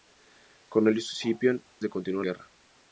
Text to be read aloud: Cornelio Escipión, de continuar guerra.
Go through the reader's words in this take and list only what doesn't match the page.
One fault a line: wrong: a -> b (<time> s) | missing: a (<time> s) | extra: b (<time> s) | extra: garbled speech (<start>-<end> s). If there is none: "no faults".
no faults